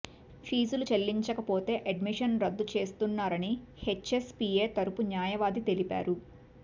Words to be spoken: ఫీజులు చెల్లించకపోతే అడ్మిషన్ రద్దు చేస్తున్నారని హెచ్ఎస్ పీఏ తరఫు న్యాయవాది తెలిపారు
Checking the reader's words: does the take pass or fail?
pass